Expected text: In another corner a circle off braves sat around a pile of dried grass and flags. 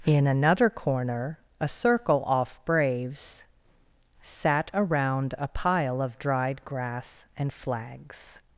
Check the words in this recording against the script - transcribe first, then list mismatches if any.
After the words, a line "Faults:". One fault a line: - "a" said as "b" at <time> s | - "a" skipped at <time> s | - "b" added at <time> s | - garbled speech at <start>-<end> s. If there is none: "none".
In another corner a circle off braves sat around a pile of dried grass and flags.
Faults:
none